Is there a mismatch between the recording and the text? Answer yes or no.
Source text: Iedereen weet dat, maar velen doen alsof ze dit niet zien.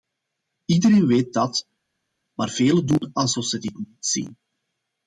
no